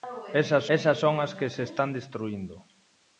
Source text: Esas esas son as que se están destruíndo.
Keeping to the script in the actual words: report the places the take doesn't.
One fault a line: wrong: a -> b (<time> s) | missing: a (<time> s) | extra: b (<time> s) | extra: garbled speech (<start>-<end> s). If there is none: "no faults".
no faults